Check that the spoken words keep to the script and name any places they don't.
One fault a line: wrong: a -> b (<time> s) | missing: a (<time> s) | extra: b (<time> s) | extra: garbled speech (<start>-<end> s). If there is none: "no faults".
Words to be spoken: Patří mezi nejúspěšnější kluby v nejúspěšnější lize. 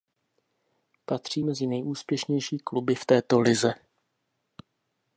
wrong: nejúspěšnější -> této (3.0 s)